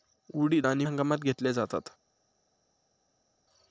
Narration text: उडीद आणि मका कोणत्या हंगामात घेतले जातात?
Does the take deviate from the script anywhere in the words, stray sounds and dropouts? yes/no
yes